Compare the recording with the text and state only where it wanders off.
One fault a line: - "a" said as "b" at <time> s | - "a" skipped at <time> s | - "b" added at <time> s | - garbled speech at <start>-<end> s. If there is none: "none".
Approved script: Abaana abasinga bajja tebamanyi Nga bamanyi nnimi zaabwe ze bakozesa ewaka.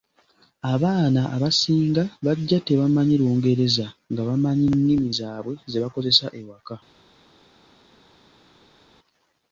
- "Lungereza" added at 3.2 s